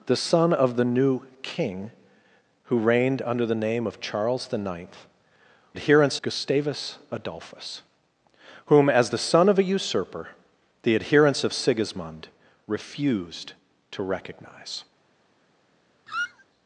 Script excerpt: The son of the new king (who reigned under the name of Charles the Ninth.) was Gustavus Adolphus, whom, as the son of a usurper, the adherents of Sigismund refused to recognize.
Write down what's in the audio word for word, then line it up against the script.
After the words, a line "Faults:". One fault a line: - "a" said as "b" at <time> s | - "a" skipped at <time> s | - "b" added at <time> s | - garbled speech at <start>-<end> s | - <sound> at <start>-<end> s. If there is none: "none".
The son of the new king (who reigned under the name of Charles the Ninth.) adherents Gustavus Adolphus, whom, as the son of a usurper, the adherents of Sigismund refused to recognize.
Faults:
- "was" said as "adherents" at 5.7 s
- squeak at 16.1-16.5 s